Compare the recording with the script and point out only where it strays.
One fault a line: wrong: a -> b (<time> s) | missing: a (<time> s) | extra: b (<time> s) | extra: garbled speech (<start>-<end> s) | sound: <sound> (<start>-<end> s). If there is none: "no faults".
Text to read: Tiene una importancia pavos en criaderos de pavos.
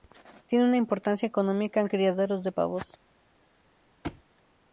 wrong: pavos -> económica (1.3 s)
sound: thud (4.0-4.2 s)